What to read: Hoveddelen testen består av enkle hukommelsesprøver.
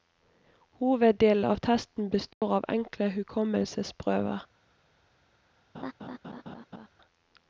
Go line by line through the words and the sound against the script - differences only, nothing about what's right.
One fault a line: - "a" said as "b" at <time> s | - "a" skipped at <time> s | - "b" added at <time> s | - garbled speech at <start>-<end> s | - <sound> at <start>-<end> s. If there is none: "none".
- "av" added at 1.4 s
- dropout at 2.3-2.4 s
- laugh at 5.7-6.9 s